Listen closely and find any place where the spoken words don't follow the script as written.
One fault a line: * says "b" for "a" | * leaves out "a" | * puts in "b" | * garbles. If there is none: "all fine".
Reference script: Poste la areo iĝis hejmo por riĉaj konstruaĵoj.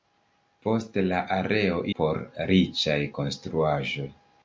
* leaves out "iĝis hejmo"